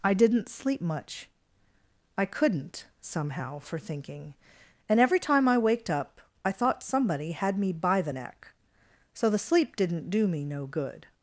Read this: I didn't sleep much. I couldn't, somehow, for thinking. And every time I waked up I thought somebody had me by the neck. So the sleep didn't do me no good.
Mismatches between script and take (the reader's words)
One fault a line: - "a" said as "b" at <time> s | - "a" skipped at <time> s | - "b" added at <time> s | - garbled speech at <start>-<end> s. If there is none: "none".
none